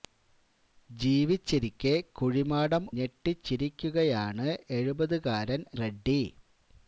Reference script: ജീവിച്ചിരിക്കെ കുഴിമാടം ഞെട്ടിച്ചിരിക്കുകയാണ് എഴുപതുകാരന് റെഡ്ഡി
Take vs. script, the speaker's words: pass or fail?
pass